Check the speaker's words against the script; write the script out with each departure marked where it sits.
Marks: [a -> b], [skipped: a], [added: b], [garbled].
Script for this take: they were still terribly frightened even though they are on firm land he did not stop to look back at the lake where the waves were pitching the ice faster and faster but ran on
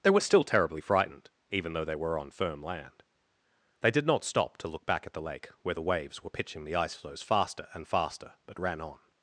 they were still terribly frightened even though they [are -> were] on firm land [he -> they] did not stop to look back at the lake where the waves were pitching the ice [added: floes] faster and faster but ran on